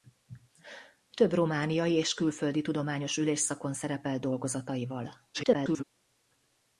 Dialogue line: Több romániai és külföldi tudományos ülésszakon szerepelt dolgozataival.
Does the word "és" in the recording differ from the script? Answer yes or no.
no